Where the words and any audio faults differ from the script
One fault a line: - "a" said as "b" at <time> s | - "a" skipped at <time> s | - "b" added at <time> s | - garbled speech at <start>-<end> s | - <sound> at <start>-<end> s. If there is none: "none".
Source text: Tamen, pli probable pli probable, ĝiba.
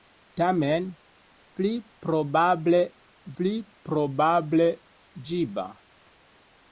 none